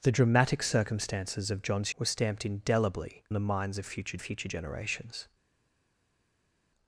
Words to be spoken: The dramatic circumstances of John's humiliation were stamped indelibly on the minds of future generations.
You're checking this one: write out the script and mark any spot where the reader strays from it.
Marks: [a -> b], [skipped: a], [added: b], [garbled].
The dramatic circumstances of John's [skipped: humiliation] were stamped indelibly [skipped: on] the minds of future [added: future] generations.